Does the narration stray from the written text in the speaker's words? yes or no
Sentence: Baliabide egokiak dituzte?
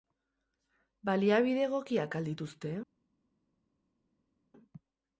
yes